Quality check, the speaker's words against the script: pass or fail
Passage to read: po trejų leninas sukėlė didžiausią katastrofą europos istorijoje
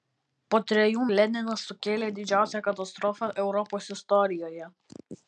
pass